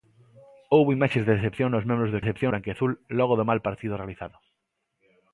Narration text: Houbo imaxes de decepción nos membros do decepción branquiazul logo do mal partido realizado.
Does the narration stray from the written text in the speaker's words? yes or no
no